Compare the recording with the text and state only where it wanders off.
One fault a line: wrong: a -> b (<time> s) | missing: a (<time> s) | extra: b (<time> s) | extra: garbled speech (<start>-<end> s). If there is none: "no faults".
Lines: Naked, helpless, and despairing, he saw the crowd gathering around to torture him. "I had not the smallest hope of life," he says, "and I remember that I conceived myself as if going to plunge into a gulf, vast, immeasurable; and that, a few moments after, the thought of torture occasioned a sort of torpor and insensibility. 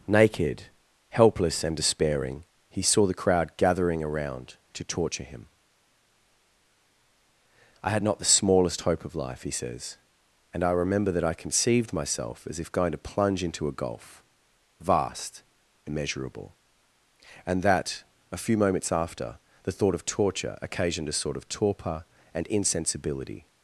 no faults